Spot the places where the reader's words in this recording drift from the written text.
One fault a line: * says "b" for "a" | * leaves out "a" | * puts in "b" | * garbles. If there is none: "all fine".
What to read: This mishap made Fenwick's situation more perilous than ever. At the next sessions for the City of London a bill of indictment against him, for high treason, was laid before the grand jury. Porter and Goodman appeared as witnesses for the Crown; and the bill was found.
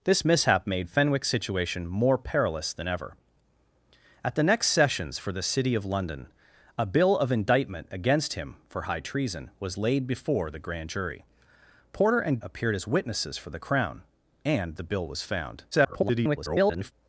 * leaves out "Goodman"
* garbles